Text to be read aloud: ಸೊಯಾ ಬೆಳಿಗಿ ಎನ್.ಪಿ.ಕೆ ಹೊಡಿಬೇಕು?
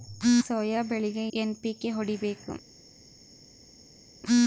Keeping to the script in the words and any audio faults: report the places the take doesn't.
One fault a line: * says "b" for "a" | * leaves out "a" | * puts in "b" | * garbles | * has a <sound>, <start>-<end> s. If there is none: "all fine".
all fine